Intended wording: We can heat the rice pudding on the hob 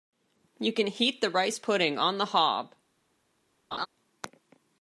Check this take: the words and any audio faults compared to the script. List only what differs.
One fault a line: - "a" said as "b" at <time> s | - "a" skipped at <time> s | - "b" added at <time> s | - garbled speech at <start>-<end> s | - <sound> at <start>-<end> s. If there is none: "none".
- "We" said as "You" at 0.6 s
- laugh at 3.7-3.9 s